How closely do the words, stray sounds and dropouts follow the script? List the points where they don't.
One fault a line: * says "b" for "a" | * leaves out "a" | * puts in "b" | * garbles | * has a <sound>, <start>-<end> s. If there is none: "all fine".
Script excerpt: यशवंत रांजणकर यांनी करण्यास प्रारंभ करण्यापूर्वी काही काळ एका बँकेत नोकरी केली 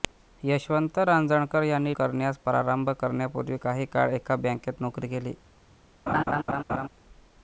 * has a laugh, 6.1-6.9 s